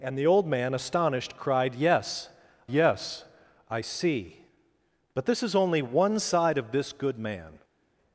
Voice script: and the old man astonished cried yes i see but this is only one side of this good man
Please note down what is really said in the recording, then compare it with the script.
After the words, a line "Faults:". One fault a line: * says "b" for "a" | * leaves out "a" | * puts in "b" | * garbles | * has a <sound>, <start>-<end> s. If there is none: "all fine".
and the old man astonished cried yes yes i see but this is only one side of this good man
Faults:
* puts in "yes"